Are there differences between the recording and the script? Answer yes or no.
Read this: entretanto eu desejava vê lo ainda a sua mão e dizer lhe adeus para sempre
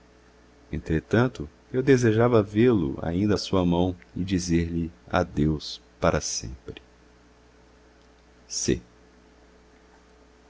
no